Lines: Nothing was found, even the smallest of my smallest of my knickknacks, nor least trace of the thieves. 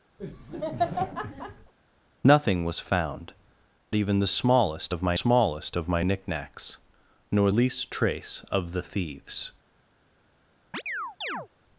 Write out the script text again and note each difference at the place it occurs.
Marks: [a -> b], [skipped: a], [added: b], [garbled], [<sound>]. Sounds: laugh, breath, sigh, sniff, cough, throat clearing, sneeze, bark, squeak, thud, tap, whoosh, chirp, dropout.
[laugh] Nothing was found, even the smallest of my smallest of my knickknacks, nor least trace of the thieves. [chirp]